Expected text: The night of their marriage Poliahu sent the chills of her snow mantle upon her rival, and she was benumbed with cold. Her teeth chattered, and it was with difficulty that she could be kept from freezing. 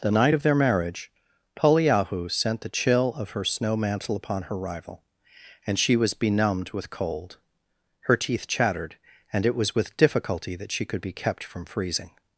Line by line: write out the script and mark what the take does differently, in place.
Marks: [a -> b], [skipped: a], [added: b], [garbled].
The night of their marriage Poliahu sent the [chills -> chill] of her snow mantle upon her rival, and she was benumbed with cold. Her teeth chattered, and it was with difficulty that she could be kept from freezing.